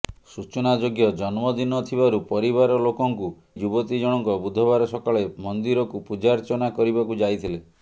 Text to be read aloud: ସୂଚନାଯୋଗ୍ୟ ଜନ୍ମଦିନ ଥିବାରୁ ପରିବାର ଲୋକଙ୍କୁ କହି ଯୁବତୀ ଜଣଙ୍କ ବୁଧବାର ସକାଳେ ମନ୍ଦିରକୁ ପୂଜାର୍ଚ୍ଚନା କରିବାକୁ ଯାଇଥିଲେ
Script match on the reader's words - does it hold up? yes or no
no